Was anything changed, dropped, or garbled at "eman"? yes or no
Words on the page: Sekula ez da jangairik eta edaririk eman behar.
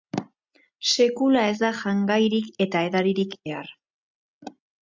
yes